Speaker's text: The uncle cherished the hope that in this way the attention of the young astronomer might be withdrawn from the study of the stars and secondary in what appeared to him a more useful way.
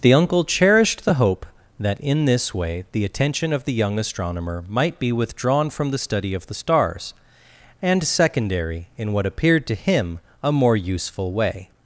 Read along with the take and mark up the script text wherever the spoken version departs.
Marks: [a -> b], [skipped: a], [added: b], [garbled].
The uncle cherished the hope that in this way the attention of the young astronomer might be withdrawn from the study of the stars and secondary in what appeared to him a more useful way.